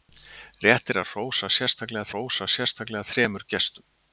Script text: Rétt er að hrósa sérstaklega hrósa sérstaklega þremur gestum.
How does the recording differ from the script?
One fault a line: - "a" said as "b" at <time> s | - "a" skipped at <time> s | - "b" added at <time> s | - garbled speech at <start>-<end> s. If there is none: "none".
none